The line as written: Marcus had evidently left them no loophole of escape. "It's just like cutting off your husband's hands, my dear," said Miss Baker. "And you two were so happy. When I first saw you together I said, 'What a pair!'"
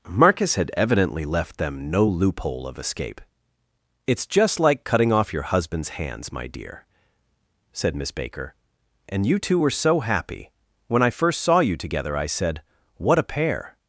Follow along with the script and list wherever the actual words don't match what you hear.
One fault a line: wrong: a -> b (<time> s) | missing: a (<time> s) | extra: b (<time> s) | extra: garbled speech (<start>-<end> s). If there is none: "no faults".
no faults